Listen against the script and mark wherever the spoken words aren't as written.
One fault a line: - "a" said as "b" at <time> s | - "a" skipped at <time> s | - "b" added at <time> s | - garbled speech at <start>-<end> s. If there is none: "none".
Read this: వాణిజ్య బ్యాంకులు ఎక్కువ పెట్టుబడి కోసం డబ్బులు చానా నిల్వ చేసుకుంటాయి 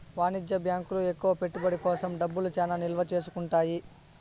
none